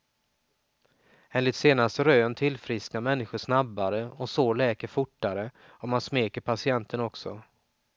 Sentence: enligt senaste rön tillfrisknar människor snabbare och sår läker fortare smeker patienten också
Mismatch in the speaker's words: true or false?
true